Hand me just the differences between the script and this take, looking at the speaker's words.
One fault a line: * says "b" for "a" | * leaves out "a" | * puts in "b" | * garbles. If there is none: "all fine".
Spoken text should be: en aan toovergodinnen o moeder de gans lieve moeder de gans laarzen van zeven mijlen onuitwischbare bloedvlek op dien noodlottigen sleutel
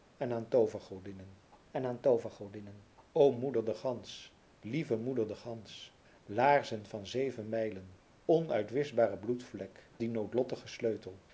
* puts in "en aan toovergodinnen"
* leaves out "op"